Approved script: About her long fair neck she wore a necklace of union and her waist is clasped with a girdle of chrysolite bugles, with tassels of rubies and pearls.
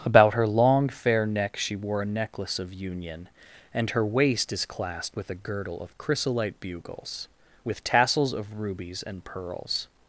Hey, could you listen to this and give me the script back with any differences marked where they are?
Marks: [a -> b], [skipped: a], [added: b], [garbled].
About her long fair neck she wore a necklace of union and her waist is clasped with a girdle of chrysolite bugles, with tassels of rubies and pearls.